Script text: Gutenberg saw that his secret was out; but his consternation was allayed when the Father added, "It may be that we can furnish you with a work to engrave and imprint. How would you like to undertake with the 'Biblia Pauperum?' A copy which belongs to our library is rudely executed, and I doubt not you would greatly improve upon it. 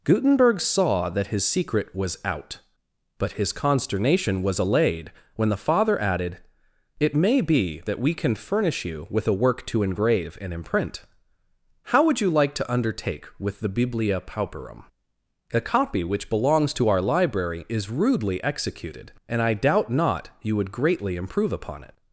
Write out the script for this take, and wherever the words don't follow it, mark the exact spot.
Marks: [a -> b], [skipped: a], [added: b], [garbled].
Gutenberg saw that his secret was out; but his consternation was allayed when the Father added, "It may be that we can furnish you with a work to engrave and imprint. How would you like to undertake with the 'Biblia Pauperum?' A copy which belongs to our library is rudely executed, and I doubt not you would greatly improve upon it.